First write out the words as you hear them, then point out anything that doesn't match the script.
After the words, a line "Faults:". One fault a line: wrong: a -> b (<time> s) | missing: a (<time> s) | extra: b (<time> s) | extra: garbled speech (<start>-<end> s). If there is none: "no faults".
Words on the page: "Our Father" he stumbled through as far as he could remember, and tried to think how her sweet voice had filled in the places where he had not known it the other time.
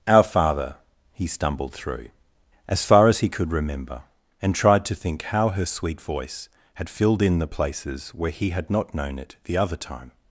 "Our Father" he stumbled through as far as he could remember, and tried to think how her sweet voice had filled in the places where he had not known it the other time.
Faults:
no faults